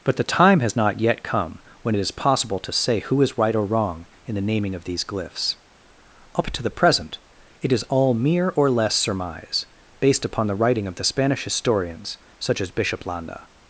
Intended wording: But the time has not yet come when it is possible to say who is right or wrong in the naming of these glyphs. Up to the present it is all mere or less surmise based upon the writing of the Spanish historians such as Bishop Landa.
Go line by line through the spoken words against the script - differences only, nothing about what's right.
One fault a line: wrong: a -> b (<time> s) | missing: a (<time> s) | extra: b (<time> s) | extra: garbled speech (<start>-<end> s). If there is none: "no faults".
no faults